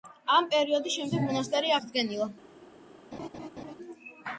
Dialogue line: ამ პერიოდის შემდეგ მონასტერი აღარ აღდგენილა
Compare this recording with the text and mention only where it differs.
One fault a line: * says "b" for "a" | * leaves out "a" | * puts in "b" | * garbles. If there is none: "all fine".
* leaves out "აღარ"